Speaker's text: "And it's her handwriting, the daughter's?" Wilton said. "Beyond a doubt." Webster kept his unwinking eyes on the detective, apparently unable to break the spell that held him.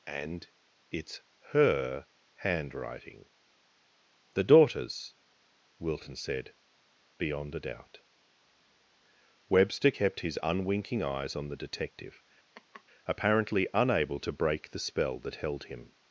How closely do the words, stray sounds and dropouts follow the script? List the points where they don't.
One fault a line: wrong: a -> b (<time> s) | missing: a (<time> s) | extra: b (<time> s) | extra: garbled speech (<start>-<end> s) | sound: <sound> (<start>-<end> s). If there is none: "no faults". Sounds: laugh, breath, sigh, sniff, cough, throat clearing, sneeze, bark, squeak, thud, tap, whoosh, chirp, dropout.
sound: laugh (12.5-12.8 s)